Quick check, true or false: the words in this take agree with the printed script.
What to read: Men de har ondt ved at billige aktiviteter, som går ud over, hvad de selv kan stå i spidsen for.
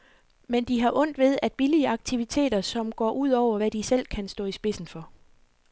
true